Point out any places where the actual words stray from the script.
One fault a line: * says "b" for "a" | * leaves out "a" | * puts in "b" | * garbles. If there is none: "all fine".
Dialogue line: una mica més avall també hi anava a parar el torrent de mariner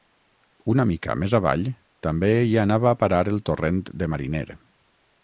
all fine